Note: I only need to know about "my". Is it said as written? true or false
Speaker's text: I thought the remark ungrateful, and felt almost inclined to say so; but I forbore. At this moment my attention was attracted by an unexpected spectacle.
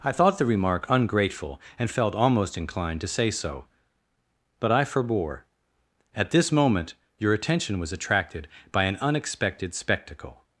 false